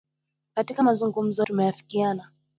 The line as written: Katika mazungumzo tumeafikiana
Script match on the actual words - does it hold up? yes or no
yes